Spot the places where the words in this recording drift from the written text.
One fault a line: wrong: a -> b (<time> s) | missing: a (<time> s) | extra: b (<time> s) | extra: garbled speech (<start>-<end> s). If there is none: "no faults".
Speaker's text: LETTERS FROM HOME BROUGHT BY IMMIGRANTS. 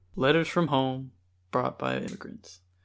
no faults